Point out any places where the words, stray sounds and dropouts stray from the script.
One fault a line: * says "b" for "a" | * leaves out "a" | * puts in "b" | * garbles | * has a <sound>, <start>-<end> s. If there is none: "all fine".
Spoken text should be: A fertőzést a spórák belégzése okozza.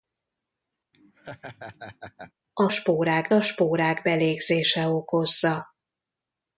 * has a laugh, 0.9-2.3 s
* says "spórák" for "fertőzést"